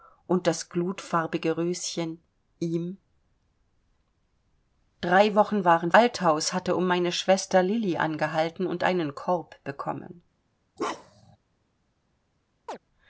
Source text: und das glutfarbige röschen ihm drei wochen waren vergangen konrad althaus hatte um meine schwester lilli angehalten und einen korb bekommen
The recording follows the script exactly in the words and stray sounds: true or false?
false